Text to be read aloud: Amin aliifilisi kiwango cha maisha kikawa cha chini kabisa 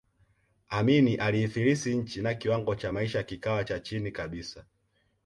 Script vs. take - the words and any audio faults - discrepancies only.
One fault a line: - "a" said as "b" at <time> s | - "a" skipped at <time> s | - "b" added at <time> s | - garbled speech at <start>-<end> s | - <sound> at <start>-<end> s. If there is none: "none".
- "nchi na" added at 2.0 s